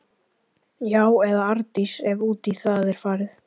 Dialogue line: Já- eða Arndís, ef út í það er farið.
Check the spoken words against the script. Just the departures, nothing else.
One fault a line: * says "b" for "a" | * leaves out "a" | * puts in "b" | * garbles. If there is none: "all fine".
all fine